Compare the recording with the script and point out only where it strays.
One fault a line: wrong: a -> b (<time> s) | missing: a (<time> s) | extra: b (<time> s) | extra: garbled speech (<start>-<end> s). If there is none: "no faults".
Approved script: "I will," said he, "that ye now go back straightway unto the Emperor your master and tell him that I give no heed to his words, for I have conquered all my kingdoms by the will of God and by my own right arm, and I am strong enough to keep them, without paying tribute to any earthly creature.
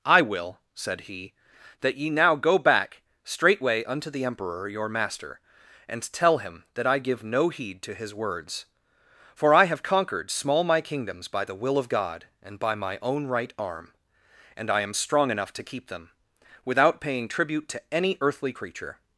wrong: all -> small (10.3 s)